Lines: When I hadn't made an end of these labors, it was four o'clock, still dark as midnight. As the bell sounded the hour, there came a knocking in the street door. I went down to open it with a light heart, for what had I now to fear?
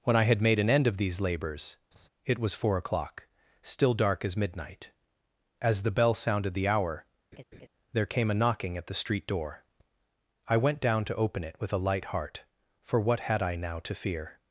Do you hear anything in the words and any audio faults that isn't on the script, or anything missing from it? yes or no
yes